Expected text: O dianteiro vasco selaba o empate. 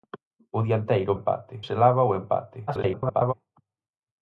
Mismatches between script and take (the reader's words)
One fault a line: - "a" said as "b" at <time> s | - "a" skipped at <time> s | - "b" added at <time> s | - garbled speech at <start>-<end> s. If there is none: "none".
- "vasco" said as "empate" at 1.2 s
- garbled speech at 2.7-3.3 s